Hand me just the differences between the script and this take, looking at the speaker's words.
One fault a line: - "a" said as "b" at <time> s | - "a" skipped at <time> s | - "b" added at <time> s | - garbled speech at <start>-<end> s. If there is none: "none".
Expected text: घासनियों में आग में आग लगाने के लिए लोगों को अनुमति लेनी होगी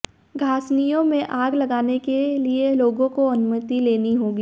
- "में आग" skipped at 1.6 s